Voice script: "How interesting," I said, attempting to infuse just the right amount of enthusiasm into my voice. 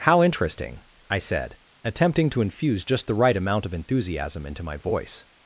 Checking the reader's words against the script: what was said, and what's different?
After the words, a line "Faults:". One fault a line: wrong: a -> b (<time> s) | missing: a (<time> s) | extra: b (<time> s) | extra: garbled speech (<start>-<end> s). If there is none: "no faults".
"How interesting," I said, attempting to infuse just the right amount of enthusiasm into my voice.
Faults:
no faults